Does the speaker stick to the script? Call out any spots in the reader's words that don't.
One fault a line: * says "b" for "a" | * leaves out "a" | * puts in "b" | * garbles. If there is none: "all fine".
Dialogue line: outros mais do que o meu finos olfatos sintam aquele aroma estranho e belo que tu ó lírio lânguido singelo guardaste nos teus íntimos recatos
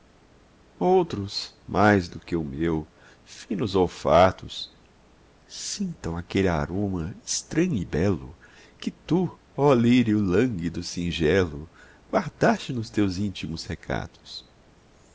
all fine